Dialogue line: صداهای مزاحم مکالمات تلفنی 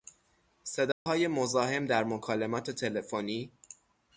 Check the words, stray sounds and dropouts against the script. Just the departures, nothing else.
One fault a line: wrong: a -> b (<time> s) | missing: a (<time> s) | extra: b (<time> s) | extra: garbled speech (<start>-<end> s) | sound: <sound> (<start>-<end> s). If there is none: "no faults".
sound: dropout (0.9-1.1 s)
extra: در (1.9 s)